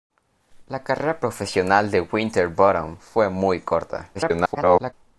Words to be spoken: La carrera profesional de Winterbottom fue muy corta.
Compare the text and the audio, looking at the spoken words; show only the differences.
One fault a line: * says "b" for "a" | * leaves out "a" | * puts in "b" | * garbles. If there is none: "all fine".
* garbles